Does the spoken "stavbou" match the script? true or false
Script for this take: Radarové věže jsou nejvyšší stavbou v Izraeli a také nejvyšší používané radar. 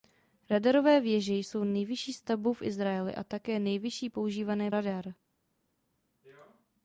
true